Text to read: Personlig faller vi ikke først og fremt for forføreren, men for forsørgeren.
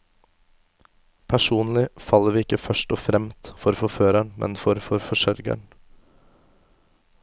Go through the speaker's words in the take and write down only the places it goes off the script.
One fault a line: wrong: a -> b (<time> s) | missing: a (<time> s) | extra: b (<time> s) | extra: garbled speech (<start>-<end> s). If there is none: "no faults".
no faults